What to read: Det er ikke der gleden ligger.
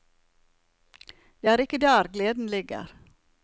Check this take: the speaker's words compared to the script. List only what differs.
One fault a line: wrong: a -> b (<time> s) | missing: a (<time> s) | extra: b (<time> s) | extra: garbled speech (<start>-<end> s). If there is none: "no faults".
no faults